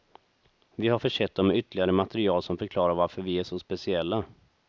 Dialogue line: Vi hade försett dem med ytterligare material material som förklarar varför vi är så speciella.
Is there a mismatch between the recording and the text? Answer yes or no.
yes